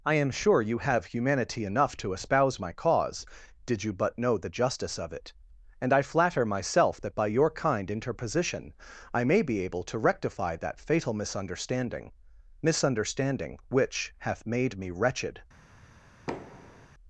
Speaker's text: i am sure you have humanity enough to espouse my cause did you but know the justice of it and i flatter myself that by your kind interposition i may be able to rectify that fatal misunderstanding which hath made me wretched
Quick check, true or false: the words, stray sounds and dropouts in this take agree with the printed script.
false